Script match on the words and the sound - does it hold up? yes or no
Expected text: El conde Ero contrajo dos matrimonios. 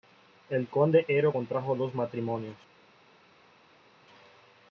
yes